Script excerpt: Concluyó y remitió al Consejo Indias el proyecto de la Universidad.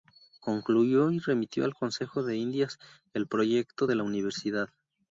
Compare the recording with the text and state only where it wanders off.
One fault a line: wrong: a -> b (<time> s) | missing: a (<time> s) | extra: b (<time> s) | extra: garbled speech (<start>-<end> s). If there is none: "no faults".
extra: de (2.2 s)